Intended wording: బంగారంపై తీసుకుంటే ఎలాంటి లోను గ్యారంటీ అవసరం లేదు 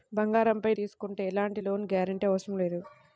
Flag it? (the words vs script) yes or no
no